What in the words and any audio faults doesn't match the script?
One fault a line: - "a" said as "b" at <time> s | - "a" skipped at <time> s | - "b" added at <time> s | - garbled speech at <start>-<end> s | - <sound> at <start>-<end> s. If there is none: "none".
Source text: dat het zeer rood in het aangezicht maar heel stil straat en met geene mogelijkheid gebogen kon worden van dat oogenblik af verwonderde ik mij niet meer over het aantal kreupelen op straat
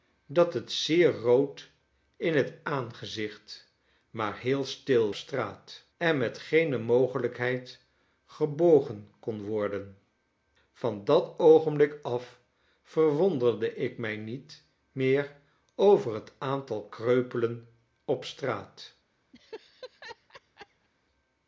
- laugh at 19.3-20.9 s